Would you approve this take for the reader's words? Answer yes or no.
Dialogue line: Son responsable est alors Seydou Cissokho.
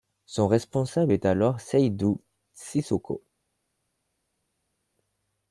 yes